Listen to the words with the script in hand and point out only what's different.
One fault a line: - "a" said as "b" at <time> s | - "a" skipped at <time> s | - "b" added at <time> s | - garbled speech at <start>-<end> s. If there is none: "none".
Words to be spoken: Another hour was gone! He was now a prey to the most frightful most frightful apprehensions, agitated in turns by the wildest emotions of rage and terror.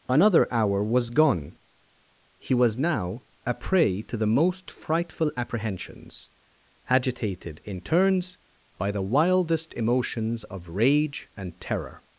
- "most frightful" skipped at 5.3 s